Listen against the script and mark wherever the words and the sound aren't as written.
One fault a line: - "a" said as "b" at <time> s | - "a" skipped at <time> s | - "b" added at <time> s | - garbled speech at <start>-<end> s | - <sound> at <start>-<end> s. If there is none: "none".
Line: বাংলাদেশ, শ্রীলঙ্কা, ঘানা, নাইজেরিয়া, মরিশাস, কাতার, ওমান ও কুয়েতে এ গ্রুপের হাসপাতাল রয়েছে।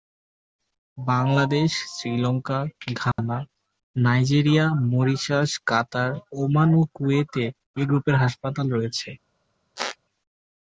- dropout at 3.1-3.2 s
- squeak at 9.8-10.0 s